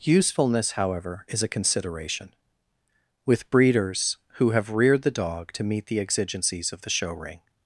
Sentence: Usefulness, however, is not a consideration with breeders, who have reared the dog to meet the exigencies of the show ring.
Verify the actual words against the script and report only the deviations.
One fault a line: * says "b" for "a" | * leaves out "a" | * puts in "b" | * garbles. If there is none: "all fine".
* leaves out "not"